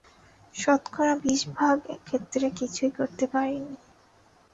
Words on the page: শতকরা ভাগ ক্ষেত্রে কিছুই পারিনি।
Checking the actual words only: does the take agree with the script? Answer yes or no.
no